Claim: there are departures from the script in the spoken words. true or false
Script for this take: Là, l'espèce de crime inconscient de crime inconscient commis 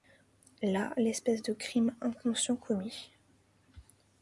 true